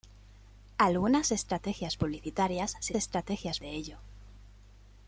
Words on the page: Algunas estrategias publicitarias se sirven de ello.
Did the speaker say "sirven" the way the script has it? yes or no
no